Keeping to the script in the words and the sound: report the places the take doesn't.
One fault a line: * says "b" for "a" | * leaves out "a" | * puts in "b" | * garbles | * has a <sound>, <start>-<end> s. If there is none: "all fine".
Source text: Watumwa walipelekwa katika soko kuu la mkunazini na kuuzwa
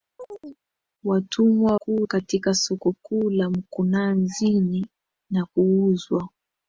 * has a chirp, 0.2-0.6 s
* says "kuu" for "walipelekwa"